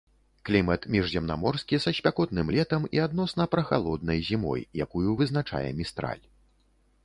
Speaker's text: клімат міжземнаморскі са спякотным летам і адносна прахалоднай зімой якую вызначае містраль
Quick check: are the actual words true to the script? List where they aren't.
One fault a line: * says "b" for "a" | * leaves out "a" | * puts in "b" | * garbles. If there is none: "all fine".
all fine